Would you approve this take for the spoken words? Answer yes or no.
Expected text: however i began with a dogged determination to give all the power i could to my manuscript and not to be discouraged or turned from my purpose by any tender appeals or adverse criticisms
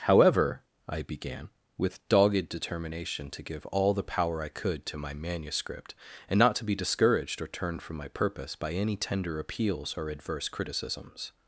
no